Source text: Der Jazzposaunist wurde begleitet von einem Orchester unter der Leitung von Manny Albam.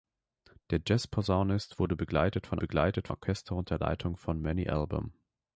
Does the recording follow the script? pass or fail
fail